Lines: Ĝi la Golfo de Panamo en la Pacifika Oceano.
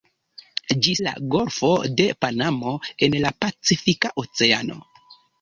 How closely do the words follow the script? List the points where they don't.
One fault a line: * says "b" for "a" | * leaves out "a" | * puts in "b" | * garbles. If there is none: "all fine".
all fine